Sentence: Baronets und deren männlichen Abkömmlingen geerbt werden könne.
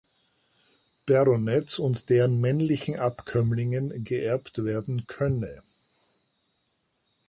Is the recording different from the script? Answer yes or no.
no